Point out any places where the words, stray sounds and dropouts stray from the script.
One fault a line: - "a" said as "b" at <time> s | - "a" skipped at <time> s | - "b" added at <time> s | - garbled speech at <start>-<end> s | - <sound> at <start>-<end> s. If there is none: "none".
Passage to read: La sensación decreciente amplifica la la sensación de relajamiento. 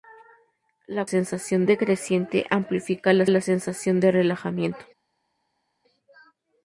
none